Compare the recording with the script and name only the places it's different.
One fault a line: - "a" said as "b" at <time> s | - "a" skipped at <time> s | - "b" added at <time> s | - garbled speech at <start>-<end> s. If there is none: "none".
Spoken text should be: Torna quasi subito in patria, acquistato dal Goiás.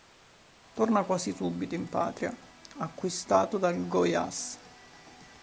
none